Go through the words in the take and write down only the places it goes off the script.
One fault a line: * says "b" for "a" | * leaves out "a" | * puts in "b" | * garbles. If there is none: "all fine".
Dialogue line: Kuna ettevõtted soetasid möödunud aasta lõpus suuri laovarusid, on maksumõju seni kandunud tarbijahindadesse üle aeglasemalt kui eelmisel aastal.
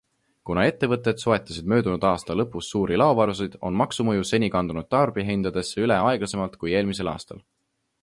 all fine